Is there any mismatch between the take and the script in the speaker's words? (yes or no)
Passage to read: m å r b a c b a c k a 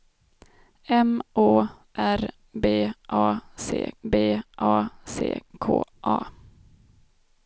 no